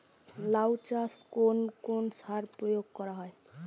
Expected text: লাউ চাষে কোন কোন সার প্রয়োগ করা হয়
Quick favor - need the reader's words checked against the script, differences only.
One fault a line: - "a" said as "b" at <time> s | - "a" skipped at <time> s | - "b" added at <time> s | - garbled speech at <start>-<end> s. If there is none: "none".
none